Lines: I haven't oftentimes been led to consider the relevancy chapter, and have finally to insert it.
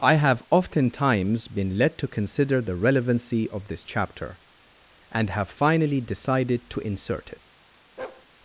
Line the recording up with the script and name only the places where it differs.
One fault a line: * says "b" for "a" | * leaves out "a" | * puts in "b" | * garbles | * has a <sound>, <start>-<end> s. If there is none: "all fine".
* says "have" for "haven't"
* puts in "of this"
* puts in "decided"
* has a bark, 8.0-8.3 s